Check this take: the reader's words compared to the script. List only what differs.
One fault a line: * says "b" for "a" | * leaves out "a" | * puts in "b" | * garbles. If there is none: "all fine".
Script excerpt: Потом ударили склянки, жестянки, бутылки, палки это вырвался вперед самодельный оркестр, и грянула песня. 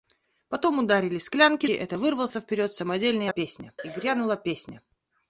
* leaves out "жестянки бутылки палки"
* says "песня" for "оркестр"